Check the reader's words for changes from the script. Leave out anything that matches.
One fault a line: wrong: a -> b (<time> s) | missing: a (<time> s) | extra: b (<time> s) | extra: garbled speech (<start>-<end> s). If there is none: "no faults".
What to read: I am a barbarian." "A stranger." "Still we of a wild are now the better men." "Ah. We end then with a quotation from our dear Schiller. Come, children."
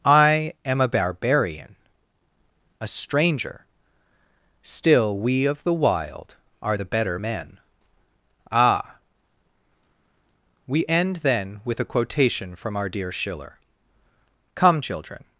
wrong: a -> the (5.6 s)
missing: now (6.8 s)